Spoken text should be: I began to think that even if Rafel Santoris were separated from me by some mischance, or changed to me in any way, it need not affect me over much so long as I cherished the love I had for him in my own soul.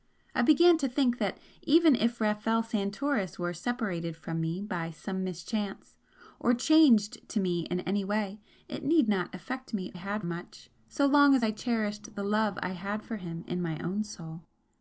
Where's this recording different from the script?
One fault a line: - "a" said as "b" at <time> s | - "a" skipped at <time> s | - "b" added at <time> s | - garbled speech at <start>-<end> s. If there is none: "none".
- "over" said as "had" at 9.9 s